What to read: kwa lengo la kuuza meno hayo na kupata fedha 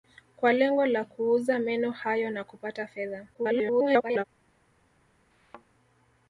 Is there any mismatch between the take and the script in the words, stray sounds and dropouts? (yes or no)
yes